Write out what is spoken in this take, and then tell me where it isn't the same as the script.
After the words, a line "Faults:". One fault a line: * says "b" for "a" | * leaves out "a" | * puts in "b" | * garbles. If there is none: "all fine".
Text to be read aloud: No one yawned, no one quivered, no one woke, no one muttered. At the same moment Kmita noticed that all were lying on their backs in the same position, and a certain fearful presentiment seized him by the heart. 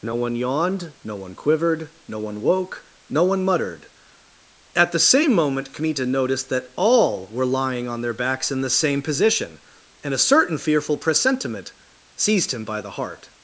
No one yawned, no one quivered, no one woke, no one muttered. At the same moment Kmita noticed that all were lying on their backs in the same position, and a certain fearful presentiment seized him by the heart.
Faults:
all fine